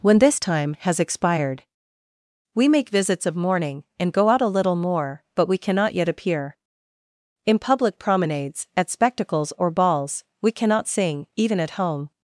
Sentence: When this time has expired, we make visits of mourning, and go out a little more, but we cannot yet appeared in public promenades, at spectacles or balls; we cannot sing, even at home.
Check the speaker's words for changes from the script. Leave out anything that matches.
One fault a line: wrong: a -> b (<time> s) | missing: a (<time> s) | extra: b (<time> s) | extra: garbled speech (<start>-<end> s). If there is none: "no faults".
wrong: appeared -> appear (6.1 s)